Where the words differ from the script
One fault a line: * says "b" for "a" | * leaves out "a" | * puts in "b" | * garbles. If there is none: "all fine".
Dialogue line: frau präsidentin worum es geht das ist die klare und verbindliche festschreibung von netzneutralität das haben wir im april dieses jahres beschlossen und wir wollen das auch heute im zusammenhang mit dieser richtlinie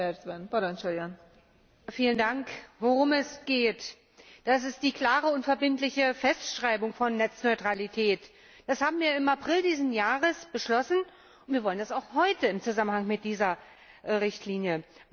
all fine